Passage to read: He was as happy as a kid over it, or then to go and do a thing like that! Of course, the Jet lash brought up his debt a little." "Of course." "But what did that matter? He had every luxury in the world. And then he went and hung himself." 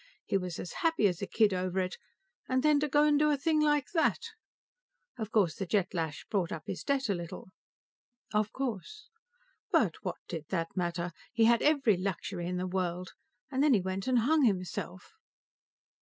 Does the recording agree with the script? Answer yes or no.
no